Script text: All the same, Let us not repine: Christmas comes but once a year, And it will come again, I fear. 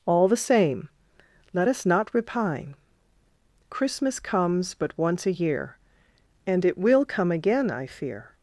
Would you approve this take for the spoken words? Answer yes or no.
yes